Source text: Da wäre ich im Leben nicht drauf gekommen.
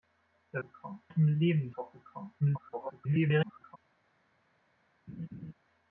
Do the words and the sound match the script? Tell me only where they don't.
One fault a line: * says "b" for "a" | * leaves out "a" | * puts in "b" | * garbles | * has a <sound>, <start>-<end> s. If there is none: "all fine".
* says "gekommen" for "wäre"
* leaves out "nicht"
* garbles
* has a laugh, 5.1-5.5 s